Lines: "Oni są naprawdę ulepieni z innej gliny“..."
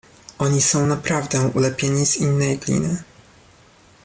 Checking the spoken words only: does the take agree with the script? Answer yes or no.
yes